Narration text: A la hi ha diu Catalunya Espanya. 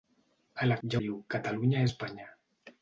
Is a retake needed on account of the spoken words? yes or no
no